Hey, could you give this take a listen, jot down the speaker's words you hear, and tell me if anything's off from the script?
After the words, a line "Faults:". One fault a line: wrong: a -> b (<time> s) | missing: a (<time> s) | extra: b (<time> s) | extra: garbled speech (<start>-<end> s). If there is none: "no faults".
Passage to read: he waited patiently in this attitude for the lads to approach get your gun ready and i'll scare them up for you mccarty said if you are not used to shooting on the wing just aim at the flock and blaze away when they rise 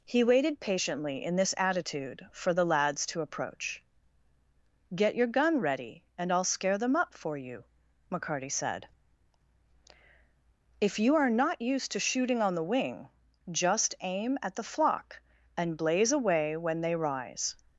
he waited patiently in this attitude for the lads to approach get your gun ready and i'll scare them up for you mccarty said if you are not used to shooting on the wing just aim at the flock and blaze away when they rise
Faults:
no faults